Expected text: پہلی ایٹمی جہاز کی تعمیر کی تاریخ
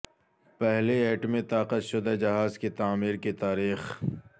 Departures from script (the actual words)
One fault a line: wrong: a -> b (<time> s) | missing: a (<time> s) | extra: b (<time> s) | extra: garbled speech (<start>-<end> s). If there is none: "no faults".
extra: طاقت شدہ (1.5 s)